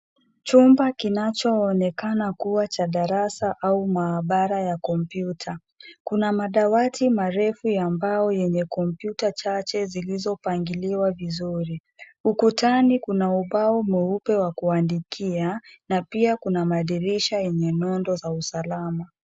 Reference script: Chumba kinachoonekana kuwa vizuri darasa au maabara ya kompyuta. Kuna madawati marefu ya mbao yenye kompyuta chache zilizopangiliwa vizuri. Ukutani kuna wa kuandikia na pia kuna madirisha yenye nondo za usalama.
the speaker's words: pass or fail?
fail